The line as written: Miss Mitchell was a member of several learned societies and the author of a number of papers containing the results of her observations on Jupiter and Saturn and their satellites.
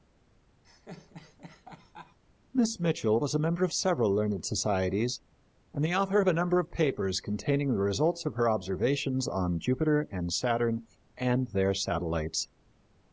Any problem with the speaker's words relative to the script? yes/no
no